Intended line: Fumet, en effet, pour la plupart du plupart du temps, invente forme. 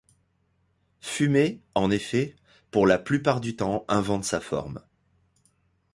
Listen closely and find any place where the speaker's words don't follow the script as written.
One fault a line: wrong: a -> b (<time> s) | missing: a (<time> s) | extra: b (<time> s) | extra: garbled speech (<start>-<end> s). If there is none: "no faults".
missing: plupart du (3.6 s)
extra: sa (4.2 s)